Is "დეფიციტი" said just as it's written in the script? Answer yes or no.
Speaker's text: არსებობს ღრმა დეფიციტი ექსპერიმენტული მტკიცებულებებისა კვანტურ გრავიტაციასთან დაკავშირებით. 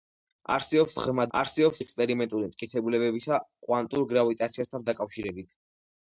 no